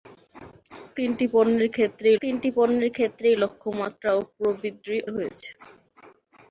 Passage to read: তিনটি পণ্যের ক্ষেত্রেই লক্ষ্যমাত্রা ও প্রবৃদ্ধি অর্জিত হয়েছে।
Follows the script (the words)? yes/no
no